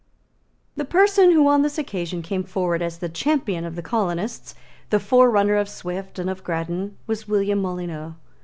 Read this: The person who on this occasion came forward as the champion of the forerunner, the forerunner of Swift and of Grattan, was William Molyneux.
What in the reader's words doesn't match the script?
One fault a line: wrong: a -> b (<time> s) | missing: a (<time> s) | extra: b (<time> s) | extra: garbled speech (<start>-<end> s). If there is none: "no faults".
wrong: forerunner -> colonists (3.8 s)